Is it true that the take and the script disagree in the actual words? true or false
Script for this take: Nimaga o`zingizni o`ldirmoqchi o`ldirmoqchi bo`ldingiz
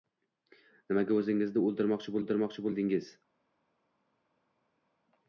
false